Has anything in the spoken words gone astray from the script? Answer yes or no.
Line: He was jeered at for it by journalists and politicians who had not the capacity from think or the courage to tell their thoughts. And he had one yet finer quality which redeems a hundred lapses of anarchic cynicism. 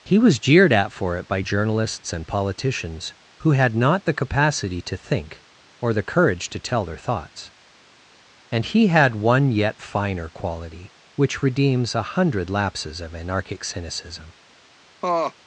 yes